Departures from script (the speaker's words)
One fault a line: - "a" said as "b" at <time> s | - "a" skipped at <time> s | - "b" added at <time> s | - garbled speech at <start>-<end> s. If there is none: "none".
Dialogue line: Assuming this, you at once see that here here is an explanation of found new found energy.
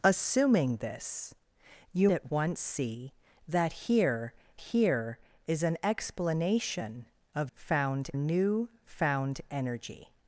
none